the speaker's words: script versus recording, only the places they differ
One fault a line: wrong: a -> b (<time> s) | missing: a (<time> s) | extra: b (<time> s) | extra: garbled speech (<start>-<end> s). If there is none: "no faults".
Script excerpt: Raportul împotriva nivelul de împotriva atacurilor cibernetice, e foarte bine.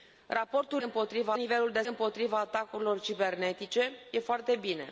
no faults